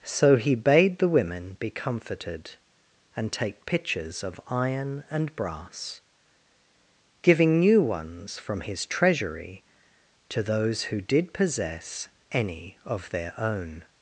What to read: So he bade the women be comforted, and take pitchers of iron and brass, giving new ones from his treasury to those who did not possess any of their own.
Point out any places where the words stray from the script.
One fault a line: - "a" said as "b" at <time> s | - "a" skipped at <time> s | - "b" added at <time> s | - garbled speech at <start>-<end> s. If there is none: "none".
- "not" skipped at 11.3 s